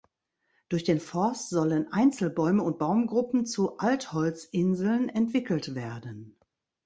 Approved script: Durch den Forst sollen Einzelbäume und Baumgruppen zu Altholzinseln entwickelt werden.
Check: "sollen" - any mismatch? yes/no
no